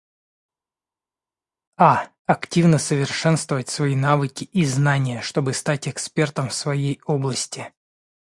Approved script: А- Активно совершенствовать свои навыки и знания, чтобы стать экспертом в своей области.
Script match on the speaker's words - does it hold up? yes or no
yes